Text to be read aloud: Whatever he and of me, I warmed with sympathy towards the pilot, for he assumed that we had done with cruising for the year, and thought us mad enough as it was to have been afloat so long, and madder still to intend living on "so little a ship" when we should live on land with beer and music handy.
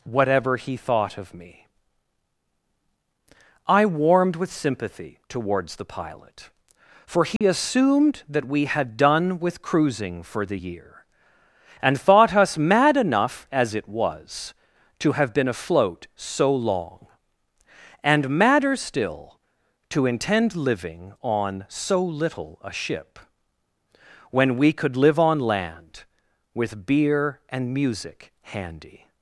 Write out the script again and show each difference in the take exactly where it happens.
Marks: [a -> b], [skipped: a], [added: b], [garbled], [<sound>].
Whatever he [and -> thought] of me, I warmed with sympathy towards the pilot, for he [dropout] assumed that we had done with cruising for the year, and thought us mad enough as it was to have been afloat so long, and madder still to intend living on "so little a ship" when we [should -> could] live on land with beer and music handy.